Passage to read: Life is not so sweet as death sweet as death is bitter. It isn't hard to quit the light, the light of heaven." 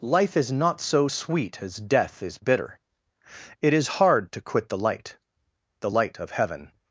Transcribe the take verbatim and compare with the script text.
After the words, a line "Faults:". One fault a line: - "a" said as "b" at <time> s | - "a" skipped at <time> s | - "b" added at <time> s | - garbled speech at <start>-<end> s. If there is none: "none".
Life is not so sweet as death is bitter. It is hard to quit the light, the light of heaven."
Faults:
- "sweet as death" skipped at 2.2 s
- "isn't" said as "is" at 3.7 s